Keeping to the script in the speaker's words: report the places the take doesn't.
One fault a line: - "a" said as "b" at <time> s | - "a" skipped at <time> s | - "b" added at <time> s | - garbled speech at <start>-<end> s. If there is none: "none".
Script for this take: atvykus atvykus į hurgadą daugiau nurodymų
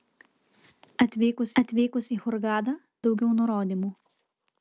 none